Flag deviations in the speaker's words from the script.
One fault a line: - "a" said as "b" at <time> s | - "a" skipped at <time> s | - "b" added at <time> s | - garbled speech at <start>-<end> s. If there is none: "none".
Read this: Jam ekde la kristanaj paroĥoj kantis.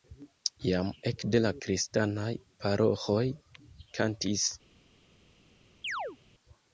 none